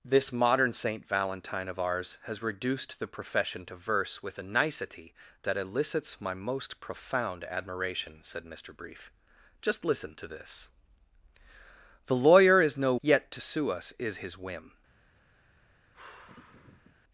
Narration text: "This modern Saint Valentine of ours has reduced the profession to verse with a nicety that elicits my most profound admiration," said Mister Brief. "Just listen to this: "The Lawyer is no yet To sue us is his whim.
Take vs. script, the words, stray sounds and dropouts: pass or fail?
fail